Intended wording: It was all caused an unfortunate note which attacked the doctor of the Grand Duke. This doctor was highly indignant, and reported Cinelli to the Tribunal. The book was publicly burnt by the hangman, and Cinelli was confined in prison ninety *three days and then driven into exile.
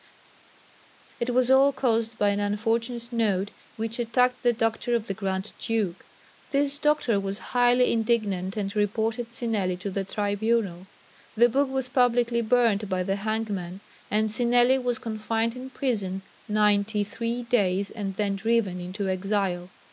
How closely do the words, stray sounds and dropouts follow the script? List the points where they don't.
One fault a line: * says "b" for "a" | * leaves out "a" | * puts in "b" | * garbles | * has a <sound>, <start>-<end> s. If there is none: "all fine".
* puts in "by"